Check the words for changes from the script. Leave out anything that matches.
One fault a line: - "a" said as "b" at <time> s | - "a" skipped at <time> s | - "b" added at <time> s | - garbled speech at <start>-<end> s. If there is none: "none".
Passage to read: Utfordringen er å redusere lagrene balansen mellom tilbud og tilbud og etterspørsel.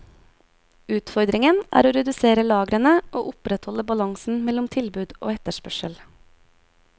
- "og opprettholde" added at 3.1 s
- "tilbud og" skipped at 5.3 s